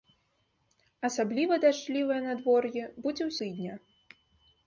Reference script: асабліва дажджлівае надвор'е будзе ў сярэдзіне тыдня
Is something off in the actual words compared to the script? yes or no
yes